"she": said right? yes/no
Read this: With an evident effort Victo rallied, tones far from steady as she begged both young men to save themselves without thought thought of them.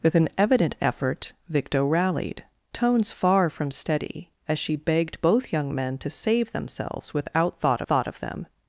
yes